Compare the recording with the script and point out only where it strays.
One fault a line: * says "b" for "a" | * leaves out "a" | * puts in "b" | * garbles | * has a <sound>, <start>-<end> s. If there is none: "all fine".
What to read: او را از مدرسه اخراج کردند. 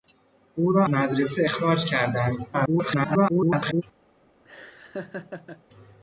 * leaves out "از"
* garbles
* has a laugh, 4.4-5.6 s